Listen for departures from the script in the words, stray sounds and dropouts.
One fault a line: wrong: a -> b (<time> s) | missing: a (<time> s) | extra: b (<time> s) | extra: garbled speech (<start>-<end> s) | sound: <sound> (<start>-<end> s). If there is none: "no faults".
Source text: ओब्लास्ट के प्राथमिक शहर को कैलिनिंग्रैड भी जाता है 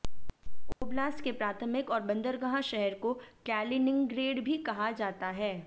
sound: dropout (0.7-0.8 s)
extra: और बंदरगाह (1.9 s)
extra: कहा (4.6 s)